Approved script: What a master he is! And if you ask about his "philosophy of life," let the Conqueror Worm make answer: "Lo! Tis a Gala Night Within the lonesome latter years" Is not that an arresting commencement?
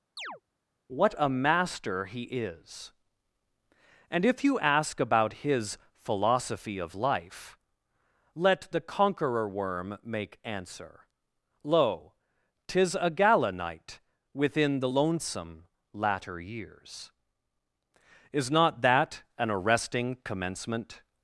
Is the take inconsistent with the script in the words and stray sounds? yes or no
yes